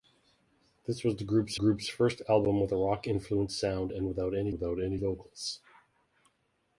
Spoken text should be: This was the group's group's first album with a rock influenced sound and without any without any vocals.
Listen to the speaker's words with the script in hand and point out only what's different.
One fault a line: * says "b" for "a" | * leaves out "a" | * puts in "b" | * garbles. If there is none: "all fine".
all fine